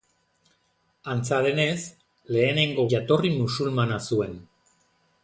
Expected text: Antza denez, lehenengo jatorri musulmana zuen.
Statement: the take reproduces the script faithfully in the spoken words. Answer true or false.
true